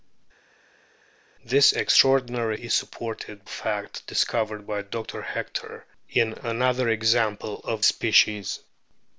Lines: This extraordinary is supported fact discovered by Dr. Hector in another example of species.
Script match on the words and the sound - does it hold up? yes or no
yes